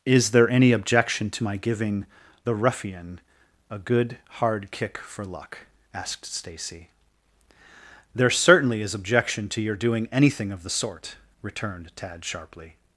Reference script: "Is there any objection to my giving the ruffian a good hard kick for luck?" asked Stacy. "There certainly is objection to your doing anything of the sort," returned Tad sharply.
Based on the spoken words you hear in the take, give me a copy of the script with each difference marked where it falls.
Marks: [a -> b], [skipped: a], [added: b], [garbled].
"Is there any objection to my giving the ruffian a good hard kick for luck?" asked Stacy. "There certainly is objection to your doing anything of the sort," returned Tad sharply.